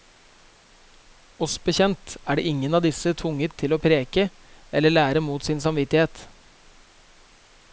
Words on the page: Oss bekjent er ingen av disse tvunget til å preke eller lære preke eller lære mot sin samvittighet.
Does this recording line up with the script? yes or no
no